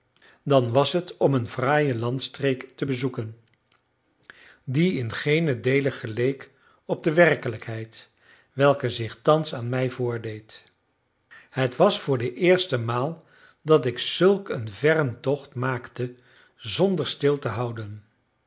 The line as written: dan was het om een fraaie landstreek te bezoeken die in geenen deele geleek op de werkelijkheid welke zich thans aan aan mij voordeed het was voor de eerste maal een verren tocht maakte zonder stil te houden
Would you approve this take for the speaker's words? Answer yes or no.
no